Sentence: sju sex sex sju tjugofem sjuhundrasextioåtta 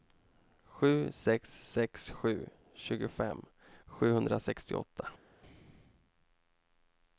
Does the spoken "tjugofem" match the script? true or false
true